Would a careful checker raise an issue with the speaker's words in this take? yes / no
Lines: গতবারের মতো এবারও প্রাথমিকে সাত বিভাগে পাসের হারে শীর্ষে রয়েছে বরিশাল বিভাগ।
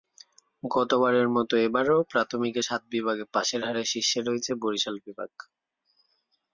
no